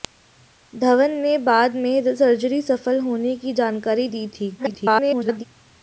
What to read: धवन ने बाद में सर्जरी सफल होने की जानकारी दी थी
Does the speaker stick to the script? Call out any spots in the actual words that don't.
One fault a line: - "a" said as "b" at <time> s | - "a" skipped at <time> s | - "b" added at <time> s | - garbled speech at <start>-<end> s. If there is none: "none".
- garbled speech at 4.6-5.4 s